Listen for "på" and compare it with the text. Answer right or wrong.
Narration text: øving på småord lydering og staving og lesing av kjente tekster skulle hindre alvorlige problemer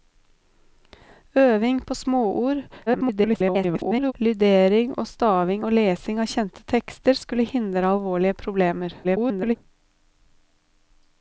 right